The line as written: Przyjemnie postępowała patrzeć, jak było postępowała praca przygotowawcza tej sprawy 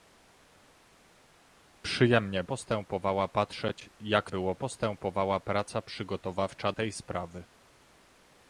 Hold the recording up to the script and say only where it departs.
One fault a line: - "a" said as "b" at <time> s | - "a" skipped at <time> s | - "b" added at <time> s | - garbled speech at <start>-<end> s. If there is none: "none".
none